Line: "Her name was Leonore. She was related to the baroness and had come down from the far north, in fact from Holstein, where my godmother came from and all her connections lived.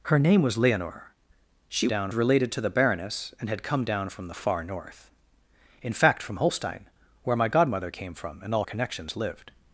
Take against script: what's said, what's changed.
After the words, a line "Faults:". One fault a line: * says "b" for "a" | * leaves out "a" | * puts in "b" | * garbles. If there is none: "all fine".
"Her name was Leonore. She down related to the baroness and had come down from the far north, in fact from Holstein, where my godmother came from and all connections lived.
Faults:
* says "down" for "was"
* leaves out "her"